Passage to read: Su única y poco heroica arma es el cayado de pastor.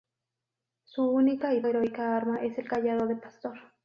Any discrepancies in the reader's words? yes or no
yes